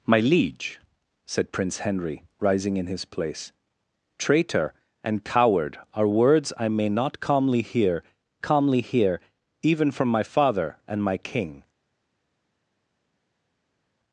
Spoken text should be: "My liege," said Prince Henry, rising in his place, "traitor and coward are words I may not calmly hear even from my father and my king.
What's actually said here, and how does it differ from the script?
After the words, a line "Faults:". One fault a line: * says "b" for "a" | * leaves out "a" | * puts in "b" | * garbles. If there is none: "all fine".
"My liege," said Prince Henry, rising in his place, "traitor and coward are words I may not calmly hear calmly hear even from my father and my king.
Faults:
* puts in "calmly hear"